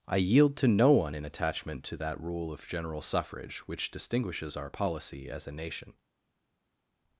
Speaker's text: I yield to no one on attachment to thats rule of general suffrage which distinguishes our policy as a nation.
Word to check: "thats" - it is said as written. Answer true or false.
false